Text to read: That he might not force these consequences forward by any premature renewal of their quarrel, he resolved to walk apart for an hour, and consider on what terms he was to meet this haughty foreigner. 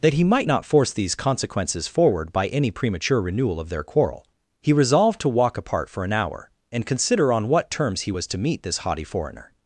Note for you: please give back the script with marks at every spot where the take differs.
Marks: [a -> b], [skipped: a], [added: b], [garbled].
That he might not force these consequences forward by any premature renewal of their quarrel, he resolved to walk apart for an hour, and consider on what terms he was to meet this haughty foreigner.